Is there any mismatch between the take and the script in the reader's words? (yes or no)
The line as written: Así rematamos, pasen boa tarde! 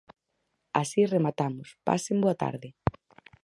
no